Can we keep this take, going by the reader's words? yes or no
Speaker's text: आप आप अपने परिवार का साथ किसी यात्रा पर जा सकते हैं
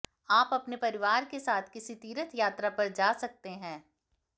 no